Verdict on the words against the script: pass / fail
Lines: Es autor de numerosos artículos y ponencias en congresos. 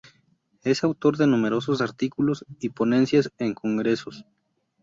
pass